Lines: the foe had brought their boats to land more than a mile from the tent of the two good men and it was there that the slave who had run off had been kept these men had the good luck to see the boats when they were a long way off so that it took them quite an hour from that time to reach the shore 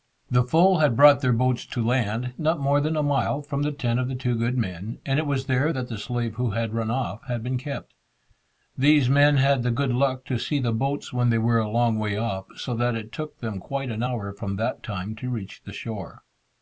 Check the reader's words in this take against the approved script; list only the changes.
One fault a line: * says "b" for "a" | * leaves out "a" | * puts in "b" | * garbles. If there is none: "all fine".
* puts in "not"